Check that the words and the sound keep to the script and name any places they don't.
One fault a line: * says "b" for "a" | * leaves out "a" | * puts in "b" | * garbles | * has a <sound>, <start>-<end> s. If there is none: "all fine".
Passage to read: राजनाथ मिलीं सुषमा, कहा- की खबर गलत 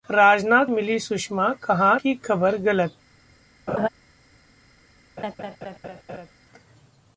* has a laugh, 3.7-3.9 s
* has a laugh, 5.2-6.3 s